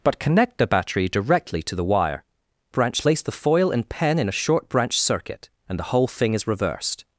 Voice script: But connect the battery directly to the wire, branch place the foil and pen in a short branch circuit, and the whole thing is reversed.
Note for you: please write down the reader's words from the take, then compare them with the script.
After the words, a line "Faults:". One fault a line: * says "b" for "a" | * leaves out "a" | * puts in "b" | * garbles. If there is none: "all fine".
But connect the battery directly to the wire, branch place the foil and pen in a short branch circuit, and the whole thing is reversed.
Faults:
all fine